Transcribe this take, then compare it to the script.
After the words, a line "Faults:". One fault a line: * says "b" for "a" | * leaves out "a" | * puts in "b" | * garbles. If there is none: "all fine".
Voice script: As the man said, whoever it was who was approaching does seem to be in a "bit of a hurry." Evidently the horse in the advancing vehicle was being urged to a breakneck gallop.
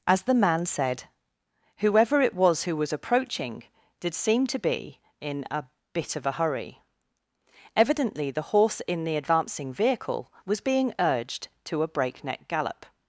As the man said, whoever it was who was approaching did seem to be in a "bit of a hurry." Evidently the horse in the advancing vehicle was being urged to a breakneck gallop.
Faults:
* says "did" for "does"